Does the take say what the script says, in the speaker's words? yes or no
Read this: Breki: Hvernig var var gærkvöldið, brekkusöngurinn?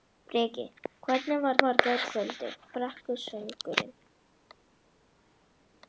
yes